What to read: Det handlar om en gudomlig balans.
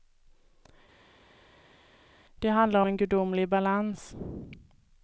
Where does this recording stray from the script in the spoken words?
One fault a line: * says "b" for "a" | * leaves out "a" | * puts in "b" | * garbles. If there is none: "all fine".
* leaves out "om"